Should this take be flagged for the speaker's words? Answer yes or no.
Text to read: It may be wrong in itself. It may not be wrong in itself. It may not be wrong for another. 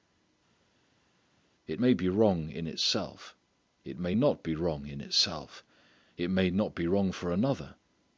no